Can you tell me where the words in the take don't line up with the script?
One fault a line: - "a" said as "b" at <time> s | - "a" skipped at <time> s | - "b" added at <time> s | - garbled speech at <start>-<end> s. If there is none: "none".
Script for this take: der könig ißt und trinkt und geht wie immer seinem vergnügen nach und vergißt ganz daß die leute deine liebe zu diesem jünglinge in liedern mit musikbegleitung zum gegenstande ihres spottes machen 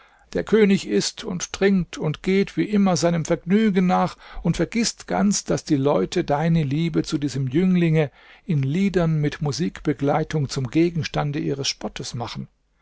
none